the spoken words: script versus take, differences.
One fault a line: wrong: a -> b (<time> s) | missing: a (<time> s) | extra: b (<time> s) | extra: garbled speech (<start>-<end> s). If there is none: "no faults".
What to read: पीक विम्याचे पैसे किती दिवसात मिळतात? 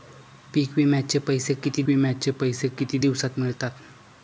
extra: विम्याचे पैसे किती (1.9 s)